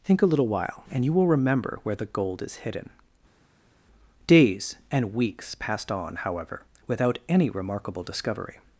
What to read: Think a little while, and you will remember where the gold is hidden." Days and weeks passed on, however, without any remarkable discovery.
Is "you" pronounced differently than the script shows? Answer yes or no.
no